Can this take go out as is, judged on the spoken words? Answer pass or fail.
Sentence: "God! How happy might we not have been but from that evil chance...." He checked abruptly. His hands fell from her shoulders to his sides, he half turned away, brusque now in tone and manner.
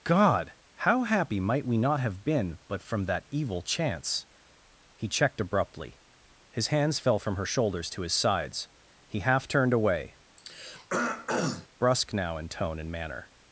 pass